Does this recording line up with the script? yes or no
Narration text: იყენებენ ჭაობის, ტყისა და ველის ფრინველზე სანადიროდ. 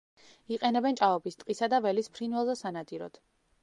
yes